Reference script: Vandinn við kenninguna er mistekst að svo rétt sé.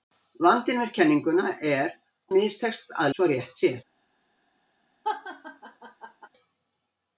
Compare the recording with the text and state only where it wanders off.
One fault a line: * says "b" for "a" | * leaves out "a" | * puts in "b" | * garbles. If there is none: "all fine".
all fine